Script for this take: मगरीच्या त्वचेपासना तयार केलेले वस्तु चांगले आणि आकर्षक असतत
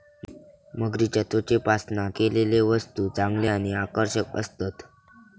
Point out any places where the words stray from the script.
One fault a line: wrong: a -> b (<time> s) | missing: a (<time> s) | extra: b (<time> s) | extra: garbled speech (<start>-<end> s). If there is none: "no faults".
missing: तयार (2.1 s)